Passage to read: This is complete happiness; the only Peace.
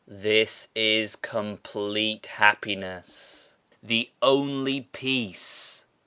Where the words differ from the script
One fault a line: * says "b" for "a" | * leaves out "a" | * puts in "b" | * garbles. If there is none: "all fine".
all fine